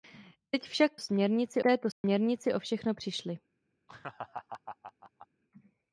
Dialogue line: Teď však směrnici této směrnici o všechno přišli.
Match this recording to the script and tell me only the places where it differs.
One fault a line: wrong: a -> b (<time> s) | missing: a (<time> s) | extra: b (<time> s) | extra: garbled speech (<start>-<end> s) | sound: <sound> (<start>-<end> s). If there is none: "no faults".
sound: dropout (1.9-2.0 s)
sound: laugh (3.9-5.3 s)